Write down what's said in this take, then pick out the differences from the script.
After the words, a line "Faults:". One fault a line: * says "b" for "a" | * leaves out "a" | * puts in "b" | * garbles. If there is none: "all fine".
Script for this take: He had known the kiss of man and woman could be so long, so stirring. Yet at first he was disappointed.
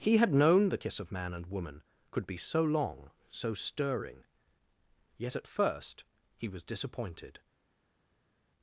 He had known the kiss of man and woman could be so long, so stirring. Yet at first he was disappointed.
Faults:
all fine